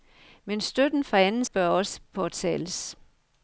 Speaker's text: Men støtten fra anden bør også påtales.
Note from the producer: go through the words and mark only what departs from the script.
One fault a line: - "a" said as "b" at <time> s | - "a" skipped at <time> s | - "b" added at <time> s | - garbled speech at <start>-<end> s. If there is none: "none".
none